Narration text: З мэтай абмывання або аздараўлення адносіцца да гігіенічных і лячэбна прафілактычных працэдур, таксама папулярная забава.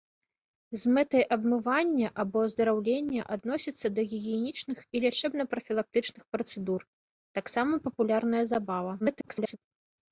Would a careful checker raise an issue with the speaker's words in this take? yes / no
yes